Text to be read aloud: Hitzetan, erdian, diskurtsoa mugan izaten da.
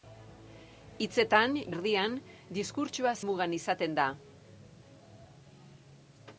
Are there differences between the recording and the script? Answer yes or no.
no